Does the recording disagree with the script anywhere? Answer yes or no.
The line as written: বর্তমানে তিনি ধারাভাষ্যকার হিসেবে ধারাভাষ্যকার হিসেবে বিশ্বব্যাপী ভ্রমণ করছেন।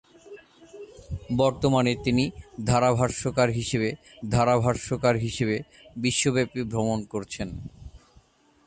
no